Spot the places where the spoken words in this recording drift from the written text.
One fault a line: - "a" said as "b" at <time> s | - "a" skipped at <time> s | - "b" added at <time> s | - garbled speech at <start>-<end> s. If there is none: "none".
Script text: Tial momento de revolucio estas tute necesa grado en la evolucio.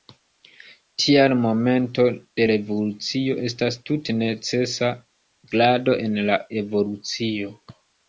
none